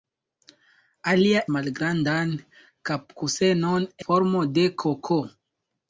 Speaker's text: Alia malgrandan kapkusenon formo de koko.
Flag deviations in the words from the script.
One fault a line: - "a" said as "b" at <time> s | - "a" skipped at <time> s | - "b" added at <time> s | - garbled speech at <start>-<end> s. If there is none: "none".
none